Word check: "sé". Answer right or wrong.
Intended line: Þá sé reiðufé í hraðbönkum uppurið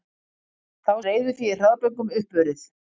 wrong